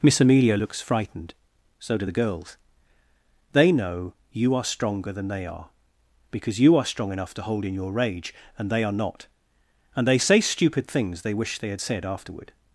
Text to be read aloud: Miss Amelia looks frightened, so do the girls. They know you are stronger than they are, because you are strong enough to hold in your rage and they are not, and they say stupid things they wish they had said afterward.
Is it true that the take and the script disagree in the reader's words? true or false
false